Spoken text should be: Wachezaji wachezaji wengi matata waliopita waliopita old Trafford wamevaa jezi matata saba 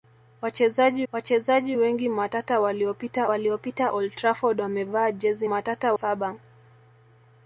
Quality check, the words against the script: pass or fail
pass